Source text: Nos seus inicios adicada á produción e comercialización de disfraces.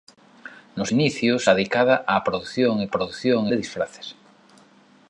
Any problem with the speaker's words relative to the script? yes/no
yes